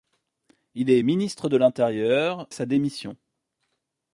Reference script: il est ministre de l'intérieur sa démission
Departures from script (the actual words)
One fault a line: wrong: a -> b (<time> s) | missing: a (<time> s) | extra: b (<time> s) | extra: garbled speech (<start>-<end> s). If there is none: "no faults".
no faults